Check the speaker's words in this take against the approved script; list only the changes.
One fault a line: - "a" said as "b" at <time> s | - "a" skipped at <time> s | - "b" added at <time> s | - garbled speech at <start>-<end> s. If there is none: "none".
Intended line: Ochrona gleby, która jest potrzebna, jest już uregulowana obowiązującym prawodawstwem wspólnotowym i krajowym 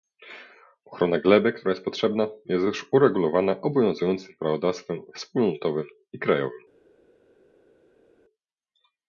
none